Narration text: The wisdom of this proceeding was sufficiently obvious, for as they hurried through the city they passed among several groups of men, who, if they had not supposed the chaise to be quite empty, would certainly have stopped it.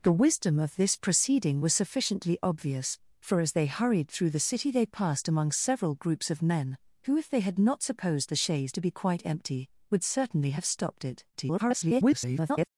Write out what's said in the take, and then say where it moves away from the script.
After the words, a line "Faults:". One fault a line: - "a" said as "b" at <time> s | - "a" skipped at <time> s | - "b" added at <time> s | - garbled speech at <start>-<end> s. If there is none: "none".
The wisdom of this proceeding was sufficiently obvious, for as they hurried through the city they passed among several groups of men, who, if they had not supposed the chaise to be quite empty, would certainly have stopped it. [garbled]
Faults:
- garbled speech at 11.3-12.7 s